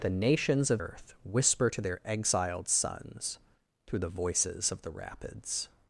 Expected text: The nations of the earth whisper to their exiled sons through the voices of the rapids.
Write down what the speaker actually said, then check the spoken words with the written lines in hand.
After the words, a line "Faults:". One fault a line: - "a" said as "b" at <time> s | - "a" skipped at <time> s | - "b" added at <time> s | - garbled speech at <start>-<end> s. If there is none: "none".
The nations of earth whisper to their exiled sons through the voices of the rapids.
Faults:
- "the" skipped at 0.8 s